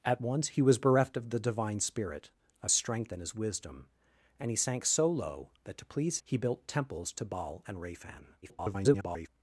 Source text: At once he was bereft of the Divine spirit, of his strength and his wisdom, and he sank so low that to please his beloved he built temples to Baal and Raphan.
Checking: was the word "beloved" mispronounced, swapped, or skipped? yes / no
yes